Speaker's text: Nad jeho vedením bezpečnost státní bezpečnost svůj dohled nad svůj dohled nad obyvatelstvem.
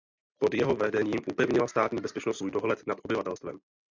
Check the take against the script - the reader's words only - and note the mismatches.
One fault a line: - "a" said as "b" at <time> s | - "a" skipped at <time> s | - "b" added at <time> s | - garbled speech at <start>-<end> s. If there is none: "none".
- "Nad" said as "Pod" at 0.4 s
- "bezpečnost" said as "upevnila" at 1.3 s
- "svůj dohled nad" skipped at 3.0 s